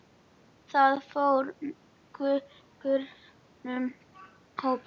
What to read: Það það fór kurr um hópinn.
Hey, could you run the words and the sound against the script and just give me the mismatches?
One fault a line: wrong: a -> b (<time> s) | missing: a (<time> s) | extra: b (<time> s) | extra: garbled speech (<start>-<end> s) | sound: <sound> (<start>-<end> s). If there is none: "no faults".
missing: það (1.0 s)